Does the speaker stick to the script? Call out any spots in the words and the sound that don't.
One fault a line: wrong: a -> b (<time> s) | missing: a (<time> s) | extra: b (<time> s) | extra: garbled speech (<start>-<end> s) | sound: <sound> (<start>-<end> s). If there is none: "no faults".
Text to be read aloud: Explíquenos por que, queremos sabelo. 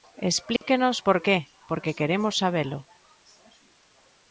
sound: dropout (0.6-0.6 s)
extra: porque (1.7 s)